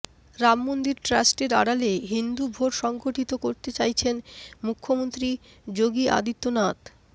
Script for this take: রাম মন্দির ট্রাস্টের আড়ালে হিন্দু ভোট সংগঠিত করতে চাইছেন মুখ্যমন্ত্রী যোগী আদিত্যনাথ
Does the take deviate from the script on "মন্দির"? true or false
false